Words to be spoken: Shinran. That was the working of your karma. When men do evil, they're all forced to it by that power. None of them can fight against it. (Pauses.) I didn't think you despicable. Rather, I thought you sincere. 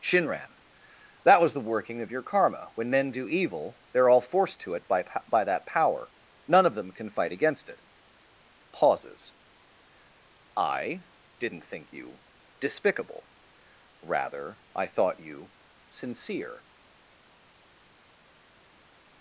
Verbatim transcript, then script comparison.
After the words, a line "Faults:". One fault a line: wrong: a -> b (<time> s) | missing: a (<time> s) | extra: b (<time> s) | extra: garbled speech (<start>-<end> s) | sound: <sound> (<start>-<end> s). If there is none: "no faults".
Shinran. That was the working of your karma. When men do evil, they're all forced to it by by that power. None of them can fight against it. (Pauses.) I didn't think you despicable. Rather, I thought you sincere.
Faults:
extra: by (5.3 s)